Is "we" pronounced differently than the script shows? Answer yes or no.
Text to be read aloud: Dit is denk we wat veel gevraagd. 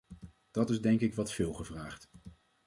yes